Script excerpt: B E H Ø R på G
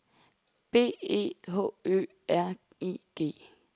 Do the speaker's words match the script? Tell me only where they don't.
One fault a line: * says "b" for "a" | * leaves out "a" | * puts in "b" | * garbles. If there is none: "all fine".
* says "I" for "på"